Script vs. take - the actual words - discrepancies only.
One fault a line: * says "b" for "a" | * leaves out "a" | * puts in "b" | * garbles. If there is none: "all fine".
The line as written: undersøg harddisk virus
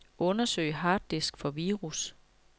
* puts in "for"